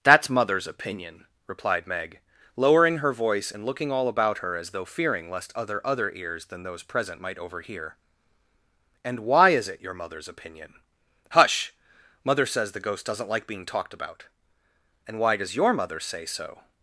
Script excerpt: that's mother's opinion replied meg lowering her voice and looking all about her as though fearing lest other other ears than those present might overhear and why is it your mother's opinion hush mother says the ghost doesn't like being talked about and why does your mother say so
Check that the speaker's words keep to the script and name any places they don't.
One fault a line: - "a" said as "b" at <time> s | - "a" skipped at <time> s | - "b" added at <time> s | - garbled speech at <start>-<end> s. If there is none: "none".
none